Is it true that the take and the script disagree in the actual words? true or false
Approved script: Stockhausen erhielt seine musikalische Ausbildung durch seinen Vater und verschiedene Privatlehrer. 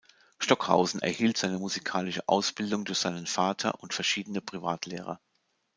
false